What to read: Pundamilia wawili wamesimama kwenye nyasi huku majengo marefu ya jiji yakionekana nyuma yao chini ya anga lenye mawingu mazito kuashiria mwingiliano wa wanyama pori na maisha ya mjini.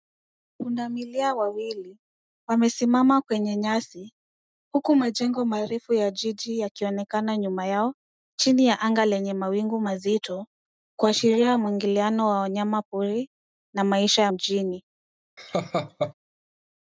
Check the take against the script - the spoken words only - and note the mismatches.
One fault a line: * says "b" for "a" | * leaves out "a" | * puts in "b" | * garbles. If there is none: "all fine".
all fine